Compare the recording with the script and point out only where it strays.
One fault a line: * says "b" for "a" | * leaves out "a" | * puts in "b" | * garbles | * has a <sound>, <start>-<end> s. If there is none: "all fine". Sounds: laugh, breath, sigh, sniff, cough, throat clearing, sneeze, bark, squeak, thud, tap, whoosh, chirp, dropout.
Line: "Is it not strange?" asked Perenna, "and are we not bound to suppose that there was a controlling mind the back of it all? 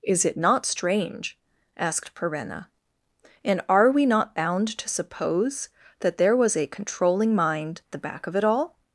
all fine